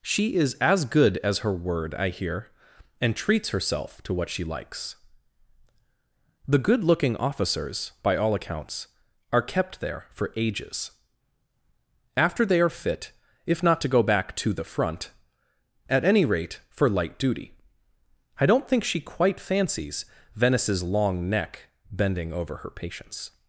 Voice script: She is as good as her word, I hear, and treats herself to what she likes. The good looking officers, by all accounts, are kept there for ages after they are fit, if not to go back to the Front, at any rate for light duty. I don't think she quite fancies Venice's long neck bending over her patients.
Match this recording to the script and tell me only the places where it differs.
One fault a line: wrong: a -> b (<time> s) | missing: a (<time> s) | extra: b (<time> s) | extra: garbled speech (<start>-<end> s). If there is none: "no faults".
no faults